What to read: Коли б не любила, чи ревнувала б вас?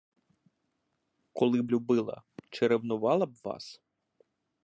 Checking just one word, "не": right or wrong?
wrong